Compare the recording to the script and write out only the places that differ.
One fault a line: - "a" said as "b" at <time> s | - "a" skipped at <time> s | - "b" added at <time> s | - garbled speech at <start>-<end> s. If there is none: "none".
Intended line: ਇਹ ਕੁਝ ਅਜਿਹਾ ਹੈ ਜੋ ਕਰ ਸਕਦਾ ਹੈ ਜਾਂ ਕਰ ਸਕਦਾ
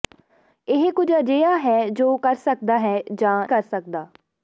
none